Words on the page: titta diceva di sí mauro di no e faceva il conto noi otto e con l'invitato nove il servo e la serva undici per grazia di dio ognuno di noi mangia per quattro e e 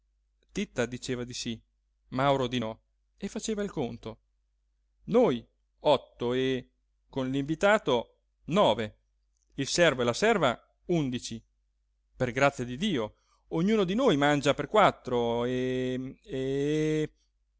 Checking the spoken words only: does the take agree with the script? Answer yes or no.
yes